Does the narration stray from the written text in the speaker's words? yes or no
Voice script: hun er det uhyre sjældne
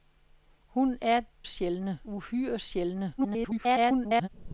yes